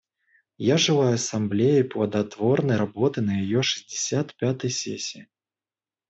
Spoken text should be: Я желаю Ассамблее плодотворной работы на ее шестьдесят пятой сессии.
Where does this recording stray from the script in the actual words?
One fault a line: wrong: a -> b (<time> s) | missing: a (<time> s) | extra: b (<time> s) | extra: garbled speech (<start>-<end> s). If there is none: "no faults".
no faults